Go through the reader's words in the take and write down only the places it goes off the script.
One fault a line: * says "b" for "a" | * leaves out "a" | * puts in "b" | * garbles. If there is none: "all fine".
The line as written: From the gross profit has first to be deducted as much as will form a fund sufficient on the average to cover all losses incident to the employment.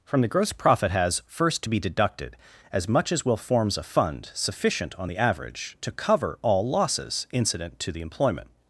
* says "forms" for "form"